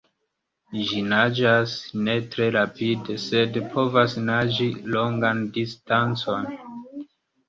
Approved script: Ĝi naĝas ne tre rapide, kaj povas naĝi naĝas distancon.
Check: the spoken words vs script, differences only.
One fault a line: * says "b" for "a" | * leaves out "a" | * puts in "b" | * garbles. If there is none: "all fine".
* says "sed" for "kaj"
* says "longan" for "naĝas"